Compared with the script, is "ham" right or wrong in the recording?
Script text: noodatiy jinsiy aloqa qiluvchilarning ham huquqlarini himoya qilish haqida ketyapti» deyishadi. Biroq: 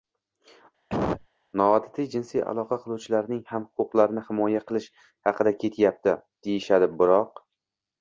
right